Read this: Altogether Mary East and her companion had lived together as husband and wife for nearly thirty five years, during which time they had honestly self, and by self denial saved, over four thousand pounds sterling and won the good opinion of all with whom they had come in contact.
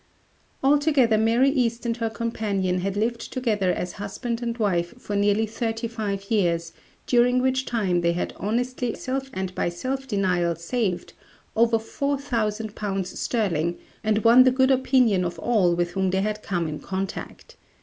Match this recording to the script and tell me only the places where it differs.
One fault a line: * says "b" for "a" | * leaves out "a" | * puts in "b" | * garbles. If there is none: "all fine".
all fine